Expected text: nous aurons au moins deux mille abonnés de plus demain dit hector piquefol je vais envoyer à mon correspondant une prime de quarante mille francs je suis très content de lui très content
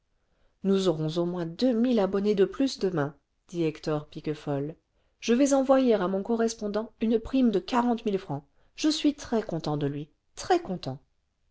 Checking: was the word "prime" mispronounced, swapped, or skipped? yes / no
no